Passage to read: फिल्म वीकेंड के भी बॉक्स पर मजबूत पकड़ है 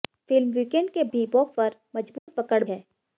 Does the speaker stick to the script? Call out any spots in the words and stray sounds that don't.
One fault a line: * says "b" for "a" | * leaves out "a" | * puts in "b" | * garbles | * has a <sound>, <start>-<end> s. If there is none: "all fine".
* has a dropout, 2.2-2.3 s